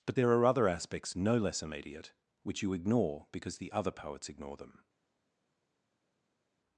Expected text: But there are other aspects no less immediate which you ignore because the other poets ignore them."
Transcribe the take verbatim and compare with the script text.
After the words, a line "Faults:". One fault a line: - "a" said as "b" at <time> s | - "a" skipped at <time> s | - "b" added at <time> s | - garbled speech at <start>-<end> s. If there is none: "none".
But there are other aspects no less immediate which you ignore because the other poets ignore them."
Faults:
none